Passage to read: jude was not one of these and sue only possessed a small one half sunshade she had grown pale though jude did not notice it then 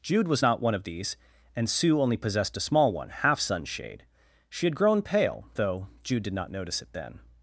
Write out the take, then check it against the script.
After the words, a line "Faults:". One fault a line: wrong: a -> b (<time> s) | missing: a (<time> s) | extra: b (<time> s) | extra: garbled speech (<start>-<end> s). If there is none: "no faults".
jude was not one of these and sue only possessed a small one half sunshade she had grown pale though jude did not notice it then
Faults:
no faults